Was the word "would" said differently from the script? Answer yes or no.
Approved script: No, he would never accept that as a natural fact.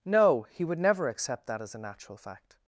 no